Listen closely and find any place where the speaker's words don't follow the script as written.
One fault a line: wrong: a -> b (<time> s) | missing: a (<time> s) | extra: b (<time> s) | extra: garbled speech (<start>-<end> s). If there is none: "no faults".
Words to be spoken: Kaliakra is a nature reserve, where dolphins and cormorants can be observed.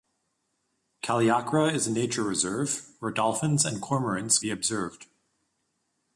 missing: can (4.4 s)